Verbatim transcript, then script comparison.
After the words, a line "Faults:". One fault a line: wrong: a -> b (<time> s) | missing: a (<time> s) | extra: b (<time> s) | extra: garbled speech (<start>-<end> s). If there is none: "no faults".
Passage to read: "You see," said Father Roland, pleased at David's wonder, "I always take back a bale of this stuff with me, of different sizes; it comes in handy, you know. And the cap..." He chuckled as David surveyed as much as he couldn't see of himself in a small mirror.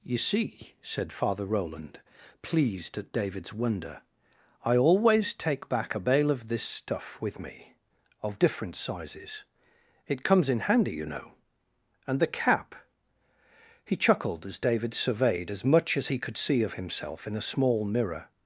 "You see," said Father Roland, pleased at David's wonder, "I always take back a bale of this stuff with me, of different sizes; it comes in handy, you know. And the cap..." He chuckled as David surveyed as much as he could see of himself in a small mirror.
Faults:
wrong: couldn't -> could (16.2 s)